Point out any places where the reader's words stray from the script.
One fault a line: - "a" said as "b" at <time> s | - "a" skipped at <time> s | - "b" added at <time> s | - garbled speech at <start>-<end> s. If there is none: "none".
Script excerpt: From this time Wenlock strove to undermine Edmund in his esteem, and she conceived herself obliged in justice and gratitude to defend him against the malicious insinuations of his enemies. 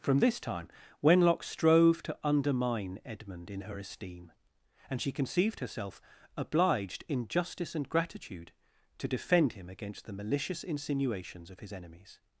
- "his" said as "her" at 3.6 s